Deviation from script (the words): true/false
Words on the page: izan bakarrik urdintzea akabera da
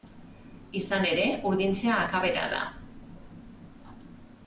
true